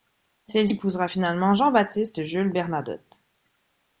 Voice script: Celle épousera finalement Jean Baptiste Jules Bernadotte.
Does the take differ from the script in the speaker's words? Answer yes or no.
no